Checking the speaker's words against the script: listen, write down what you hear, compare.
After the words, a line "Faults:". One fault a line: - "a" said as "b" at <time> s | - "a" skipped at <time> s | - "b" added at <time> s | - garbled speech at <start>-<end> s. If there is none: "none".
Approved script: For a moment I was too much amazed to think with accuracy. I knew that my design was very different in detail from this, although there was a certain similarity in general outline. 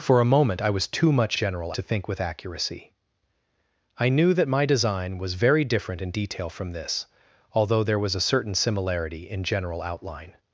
For a moment I was too much general to think with accuracy. I knew that my design was very different in detail from this, although there was a certain similarity in general outline.
Faults:
- "amazed" said as "general" at 1.3 s